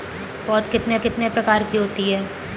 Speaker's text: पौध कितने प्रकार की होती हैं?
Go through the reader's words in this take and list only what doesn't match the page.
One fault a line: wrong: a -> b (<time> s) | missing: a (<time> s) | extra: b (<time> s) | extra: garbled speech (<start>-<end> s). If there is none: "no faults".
extra: कितने (1.0 s)